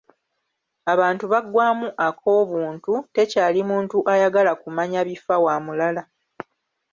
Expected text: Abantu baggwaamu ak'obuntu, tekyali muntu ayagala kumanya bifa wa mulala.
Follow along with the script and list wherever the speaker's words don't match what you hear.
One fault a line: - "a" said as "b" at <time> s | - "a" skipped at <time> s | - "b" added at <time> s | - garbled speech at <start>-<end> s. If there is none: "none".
none